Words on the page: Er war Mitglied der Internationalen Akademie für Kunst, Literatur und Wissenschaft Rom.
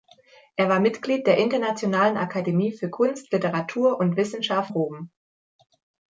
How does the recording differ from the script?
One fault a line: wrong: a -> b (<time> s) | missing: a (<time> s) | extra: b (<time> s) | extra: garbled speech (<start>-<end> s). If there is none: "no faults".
no faults